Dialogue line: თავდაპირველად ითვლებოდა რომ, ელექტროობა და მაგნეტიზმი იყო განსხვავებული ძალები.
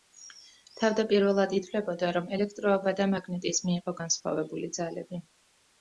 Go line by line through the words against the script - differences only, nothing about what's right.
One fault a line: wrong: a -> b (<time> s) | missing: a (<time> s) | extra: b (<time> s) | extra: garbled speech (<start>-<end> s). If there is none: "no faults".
no faults